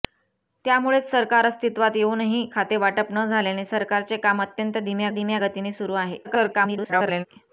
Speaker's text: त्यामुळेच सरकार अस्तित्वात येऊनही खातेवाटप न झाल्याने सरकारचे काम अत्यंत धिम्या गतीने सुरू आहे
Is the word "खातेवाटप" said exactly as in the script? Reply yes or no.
yes